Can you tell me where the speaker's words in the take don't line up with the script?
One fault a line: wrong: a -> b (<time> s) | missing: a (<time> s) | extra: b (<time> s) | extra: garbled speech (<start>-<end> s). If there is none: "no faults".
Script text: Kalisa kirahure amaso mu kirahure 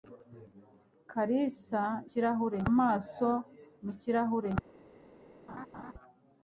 no faults